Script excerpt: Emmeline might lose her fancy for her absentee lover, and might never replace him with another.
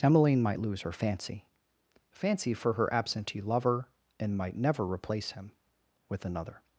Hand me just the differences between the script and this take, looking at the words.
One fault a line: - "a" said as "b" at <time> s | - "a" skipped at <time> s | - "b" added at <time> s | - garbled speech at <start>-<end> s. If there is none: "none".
- "fancy" added at 2.1 s